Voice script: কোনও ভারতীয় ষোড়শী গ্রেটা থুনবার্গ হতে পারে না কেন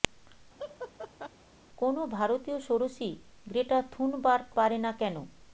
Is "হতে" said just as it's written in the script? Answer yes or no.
no